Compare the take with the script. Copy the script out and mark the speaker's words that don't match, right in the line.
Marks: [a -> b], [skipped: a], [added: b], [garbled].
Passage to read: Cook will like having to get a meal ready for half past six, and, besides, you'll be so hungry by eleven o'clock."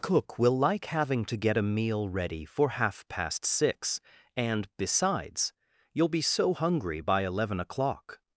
Cook will like having to get a meal ready for half past six, and, besides, you'll be so hungry by eleven o'clock."